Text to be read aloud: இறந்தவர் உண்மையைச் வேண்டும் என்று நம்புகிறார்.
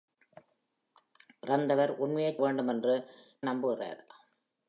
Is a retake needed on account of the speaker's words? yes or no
no